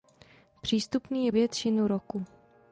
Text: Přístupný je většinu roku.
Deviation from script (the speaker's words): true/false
false